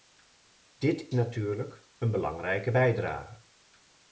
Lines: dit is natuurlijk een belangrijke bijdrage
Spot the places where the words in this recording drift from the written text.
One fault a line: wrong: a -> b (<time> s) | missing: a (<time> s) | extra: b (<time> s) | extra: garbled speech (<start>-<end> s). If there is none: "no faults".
missing: is (1.1 s)